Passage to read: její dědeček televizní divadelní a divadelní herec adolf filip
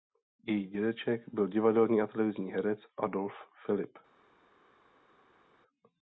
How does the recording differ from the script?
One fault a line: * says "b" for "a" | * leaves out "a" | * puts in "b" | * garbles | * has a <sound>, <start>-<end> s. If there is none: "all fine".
* says "byl" for "televizní"
* says "televizní" for "divadelní"